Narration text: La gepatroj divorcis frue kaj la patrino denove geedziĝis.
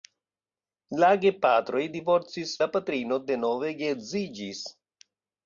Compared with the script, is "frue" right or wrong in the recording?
wrong